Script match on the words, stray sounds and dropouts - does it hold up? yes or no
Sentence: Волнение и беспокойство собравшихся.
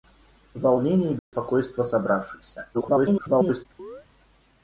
no